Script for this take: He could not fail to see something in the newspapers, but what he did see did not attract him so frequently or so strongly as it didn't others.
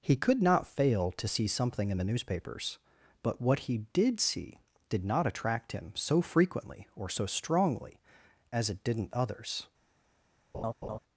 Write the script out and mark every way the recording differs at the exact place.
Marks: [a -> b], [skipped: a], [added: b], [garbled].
He could not fail to see something in the newspapers, but what he did see did not attract him so frequently or so strongly as it didn't others.